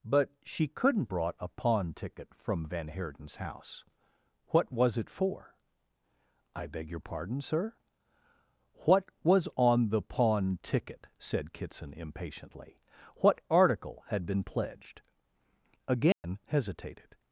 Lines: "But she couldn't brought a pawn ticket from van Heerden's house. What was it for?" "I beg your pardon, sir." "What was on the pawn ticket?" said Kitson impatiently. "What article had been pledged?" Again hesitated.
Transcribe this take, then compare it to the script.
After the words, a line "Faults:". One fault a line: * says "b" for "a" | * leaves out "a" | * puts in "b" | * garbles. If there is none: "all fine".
"But she couldn't brought a pawn ticket from van Heerden's house. What was it for?" "I beg your pardon, sir." "What was on the pawn ticket?" said Kitson impatiently. "What article had been pledged?" Again hesitated.
Faults:
all fine